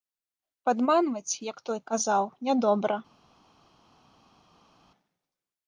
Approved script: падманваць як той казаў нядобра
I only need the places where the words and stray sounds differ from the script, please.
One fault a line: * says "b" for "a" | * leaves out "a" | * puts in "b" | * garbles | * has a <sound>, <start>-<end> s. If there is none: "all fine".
all fine